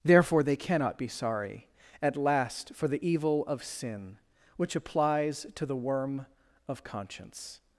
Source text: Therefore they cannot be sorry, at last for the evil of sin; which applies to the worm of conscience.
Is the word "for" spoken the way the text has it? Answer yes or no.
yes